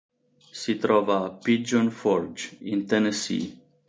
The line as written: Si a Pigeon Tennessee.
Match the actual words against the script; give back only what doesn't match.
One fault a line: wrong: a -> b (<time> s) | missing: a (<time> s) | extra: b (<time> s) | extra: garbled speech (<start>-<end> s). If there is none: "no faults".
extra: trova (0.8 s)
extra: Forge in (1.9 s)